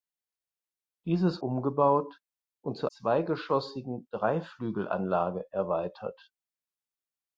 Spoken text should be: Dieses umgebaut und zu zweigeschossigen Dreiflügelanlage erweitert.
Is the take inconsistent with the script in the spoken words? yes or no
no